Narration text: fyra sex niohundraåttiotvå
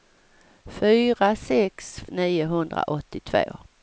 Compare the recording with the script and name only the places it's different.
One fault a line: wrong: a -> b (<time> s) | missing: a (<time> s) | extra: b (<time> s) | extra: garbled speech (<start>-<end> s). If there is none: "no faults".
no faults